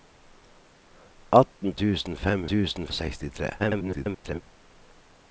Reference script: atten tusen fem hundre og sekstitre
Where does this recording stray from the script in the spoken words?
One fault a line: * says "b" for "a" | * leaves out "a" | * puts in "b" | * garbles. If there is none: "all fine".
* says "tusen" for "hundre"
* garbles